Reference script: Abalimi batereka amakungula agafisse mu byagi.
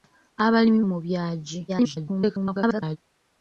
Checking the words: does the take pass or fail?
fail